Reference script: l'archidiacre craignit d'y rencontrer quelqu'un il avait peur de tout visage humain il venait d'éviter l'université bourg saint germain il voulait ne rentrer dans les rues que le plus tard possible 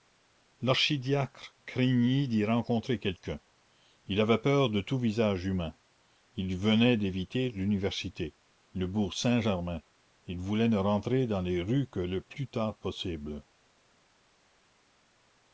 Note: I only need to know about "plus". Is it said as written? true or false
true